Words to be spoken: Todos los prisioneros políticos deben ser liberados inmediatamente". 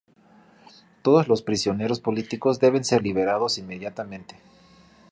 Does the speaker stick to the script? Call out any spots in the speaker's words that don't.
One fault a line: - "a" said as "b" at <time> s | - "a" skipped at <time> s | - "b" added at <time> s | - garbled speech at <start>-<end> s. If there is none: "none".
none